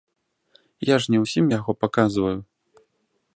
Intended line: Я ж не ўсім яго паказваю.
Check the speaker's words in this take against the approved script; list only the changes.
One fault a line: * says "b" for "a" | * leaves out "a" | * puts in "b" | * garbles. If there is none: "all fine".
all fine